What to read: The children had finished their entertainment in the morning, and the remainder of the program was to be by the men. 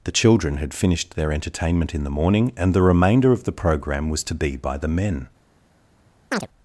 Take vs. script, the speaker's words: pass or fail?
pass